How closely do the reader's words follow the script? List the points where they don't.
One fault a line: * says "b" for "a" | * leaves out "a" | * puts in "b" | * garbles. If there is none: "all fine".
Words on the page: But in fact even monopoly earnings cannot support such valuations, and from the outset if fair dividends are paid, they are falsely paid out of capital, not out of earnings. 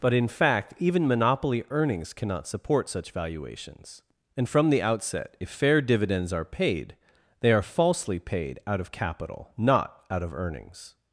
all fine